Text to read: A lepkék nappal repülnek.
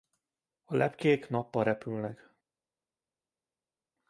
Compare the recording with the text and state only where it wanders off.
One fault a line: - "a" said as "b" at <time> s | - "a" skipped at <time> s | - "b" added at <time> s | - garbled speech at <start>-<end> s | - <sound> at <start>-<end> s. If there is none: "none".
none